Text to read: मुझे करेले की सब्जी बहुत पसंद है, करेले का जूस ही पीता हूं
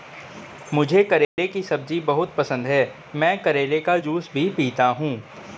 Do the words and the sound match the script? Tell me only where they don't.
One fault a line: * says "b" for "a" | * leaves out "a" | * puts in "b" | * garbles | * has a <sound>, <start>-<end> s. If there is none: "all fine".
* has a dropout, 1.2-1.4 s
* puts in "मैं"
* says "भी" for "ही"